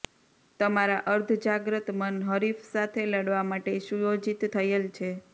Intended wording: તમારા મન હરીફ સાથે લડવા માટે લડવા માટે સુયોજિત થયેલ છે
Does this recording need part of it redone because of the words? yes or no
yes